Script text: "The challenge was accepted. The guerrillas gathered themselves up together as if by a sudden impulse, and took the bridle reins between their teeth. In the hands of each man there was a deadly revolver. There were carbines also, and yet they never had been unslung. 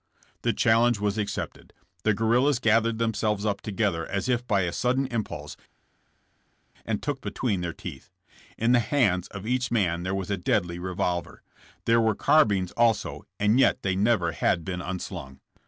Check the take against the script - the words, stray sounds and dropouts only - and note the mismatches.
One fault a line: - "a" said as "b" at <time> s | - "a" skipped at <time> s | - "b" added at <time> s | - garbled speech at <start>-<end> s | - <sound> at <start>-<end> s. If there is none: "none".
- "the bridle reins" skipped at 7.2 s